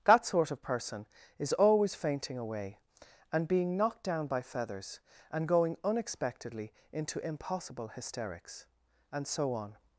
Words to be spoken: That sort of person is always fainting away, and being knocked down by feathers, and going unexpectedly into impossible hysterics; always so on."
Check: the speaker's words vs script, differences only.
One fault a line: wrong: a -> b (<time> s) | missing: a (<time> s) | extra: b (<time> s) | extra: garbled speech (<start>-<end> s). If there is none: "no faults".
wrong: always -> and (9.1 s)